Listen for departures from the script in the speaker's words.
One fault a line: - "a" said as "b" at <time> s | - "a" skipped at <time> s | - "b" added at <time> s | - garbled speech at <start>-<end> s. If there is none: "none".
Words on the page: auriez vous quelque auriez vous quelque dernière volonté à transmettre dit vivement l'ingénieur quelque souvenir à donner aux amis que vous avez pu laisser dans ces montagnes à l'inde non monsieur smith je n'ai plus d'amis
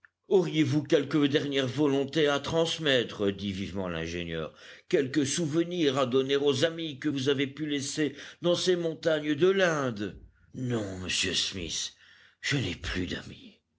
- "auriez vous quelque" skipped at 1.3 s
- "à" said as "de" at 9.4 s